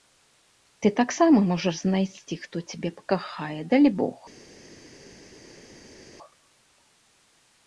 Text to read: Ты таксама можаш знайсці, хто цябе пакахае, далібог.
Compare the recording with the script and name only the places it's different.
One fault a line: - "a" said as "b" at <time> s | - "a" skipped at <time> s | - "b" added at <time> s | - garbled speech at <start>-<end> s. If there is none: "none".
none